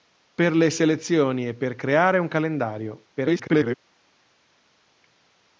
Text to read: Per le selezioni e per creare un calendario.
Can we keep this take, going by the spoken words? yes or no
no